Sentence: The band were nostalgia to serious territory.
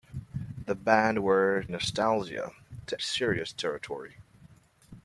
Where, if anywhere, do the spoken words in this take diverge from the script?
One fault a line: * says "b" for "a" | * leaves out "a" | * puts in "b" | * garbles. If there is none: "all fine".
all fine